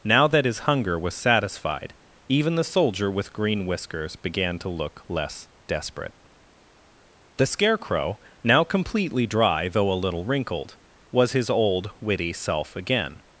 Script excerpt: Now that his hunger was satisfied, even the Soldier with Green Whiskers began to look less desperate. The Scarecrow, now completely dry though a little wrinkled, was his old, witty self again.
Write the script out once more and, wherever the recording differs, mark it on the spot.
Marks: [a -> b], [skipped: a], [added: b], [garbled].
Now that his hunger was satisfied, even the Soldier with Green Whiskers began to look less desperate. The Scarecrow, now completely dry though a little wrinkled, was his old, witty self again.